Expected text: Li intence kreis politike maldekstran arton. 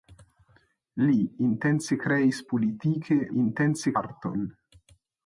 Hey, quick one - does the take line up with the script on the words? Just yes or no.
no